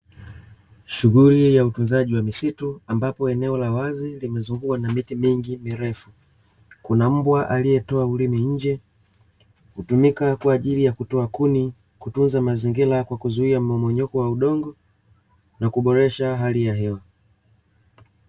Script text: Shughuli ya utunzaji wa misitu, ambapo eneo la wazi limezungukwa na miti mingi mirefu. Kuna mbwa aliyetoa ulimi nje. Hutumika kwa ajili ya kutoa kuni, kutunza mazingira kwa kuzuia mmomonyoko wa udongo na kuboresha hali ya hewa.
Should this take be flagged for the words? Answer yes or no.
no